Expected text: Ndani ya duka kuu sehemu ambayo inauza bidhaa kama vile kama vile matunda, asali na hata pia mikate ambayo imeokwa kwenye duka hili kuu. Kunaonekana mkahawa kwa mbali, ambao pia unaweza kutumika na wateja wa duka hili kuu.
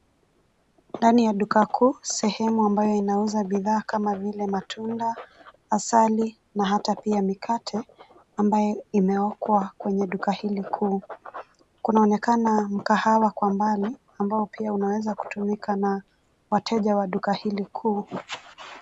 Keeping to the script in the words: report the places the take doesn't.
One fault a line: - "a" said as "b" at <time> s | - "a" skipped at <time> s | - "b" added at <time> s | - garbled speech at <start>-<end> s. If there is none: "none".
- "kama vile" skipped at 4.5 s